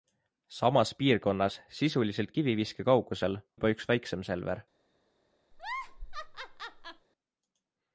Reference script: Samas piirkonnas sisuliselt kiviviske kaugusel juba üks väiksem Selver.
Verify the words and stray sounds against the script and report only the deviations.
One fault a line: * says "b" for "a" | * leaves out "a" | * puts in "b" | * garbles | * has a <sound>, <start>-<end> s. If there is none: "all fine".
* has a laugh, 5.5-7.1 s